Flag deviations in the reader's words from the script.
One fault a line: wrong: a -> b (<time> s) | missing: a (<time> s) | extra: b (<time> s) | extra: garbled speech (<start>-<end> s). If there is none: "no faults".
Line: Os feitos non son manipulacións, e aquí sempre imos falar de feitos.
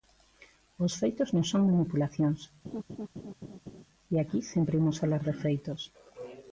no faults